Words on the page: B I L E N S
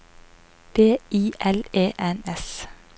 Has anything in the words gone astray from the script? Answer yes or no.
no